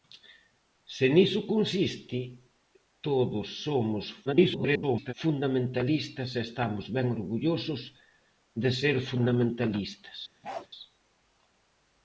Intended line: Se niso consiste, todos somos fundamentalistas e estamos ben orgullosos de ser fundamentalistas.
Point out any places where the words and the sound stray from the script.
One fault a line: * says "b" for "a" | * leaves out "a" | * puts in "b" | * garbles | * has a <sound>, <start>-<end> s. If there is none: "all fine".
* garbles
* has a bark, 10.4-10.7 s